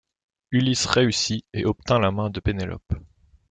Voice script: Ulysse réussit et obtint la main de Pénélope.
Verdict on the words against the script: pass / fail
pass